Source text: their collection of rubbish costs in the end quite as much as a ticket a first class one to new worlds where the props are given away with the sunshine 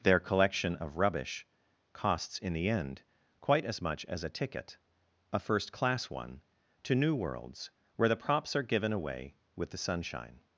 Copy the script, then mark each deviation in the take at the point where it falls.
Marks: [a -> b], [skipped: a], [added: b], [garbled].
their collection of rubbish costs in the end quite as much as a ticket a first class one to new worlds where the props are given away with the sunshine